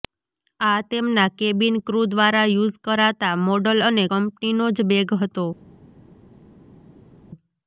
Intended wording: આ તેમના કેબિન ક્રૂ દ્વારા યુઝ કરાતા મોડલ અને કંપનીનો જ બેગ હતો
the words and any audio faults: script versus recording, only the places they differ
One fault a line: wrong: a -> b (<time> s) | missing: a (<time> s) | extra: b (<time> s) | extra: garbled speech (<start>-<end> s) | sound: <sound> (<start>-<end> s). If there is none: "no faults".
no faults